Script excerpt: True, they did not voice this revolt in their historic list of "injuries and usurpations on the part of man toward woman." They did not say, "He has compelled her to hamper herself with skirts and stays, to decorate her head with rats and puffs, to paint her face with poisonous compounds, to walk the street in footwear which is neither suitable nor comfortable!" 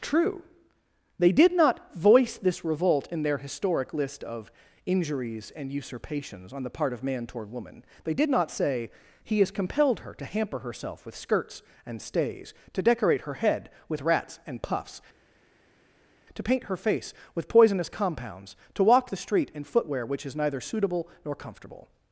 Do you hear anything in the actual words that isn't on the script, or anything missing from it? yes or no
no